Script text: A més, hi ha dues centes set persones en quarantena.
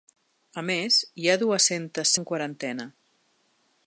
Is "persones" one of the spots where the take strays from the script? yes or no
yes